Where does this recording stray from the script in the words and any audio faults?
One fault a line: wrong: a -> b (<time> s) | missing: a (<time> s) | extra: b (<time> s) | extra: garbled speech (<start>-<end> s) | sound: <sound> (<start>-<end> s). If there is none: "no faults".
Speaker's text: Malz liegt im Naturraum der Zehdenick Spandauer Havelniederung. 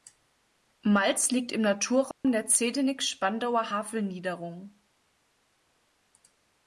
sound: dropout (2.1-2.2 s)